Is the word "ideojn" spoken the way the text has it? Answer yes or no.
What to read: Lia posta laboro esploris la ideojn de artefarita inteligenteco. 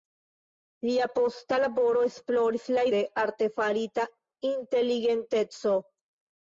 no